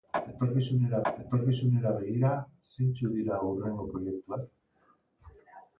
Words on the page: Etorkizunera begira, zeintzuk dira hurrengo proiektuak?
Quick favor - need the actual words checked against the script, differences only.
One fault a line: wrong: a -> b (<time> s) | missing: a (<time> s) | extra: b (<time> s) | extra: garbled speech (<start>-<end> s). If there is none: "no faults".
extra: etorkizunera (1.1 s)